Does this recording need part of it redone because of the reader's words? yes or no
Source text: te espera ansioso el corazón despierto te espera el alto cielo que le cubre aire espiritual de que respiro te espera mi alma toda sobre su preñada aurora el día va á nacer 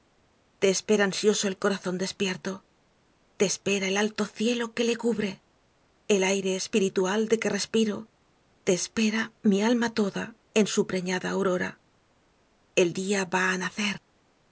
yes